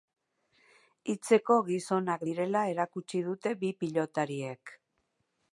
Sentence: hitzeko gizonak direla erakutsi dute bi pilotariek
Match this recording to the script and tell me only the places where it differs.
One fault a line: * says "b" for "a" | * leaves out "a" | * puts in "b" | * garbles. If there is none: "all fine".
all fine